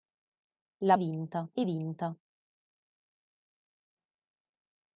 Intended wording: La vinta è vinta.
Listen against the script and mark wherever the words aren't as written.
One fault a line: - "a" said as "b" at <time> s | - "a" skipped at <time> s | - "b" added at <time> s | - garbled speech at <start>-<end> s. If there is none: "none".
none